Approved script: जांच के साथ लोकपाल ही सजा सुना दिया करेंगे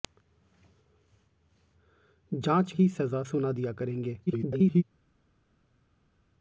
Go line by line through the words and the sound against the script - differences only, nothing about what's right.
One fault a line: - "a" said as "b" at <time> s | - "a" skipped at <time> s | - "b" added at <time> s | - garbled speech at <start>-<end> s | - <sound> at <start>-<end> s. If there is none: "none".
- "के साथ लोकपाल" skipped at 2.7 s
- garbled speech at 4.3-4.8 s